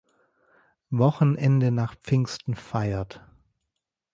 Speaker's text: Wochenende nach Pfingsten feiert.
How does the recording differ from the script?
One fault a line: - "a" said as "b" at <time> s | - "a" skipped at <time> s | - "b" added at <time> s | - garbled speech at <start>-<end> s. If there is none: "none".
none